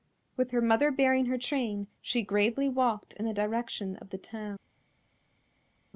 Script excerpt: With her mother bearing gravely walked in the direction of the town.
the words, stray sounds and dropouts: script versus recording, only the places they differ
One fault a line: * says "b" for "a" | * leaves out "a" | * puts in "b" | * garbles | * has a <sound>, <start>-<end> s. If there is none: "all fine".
* puts in "her train she"